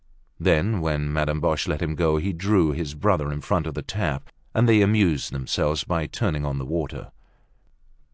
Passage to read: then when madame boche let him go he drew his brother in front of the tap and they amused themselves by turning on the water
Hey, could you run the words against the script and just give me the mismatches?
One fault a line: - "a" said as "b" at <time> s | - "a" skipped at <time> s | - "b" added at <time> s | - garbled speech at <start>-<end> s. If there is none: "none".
none